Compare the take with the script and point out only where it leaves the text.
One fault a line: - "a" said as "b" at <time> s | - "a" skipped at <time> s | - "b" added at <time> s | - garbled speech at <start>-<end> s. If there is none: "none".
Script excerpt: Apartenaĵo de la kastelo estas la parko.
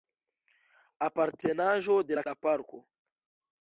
- "kastelo estas" skipped at 2.2 s